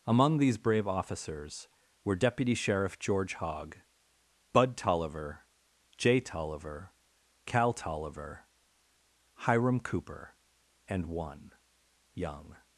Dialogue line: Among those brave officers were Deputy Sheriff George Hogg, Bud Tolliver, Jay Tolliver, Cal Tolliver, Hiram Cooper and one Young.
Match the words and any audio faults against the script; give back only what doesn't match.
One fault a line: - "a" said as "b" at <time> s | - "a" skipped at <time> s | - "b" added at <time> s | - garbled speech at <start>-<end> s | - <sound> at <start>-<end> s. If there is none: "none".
- "those" said as "these" at 0.4 s